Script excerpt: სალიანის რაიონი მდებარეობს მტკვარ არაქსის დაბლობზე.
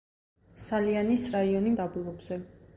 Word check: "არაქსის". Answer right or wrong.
wrong